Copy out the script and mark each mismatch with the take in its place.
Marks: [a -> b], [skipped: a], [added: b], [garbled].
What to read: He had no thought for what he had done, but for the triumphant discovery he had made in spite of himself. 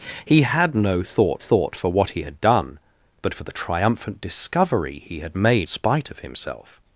He had no thought [added: thought] for what he had done, but for the triumphant discovery he had made [skipped: in] spite of himself.